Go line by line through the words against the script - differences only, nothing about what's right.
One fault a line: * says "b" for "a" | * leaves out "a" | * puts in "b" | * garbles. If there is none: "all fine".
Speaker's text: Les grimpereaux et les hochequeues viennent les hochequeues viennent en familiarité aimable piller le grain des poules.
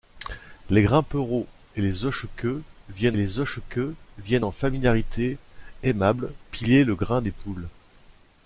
all fine